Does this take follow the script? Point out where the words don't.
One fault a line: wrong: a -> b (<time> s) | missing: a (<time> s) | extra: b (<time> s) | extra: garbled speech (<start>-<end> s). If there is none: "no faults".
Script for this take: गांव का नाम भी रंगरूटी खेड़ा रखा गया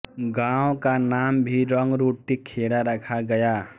no faults